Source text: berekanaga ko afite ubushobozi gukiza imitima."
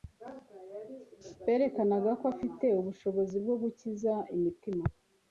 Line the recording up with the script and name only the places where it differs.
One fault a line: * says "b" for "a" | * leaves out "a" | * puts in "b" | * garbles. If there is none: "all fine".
* puts in "bwo"